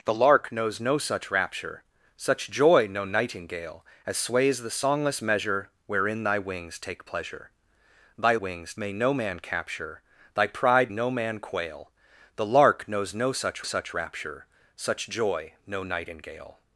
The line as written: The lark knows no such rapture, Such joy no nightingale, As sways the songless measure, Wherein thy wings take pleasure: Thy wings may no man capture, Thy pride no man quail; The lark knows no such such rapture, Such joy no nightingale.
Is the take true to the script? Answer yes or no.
yes